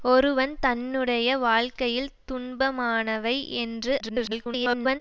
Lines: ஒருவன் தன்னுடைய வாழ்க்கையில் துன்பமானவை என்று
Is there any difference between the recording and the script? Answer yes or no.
yes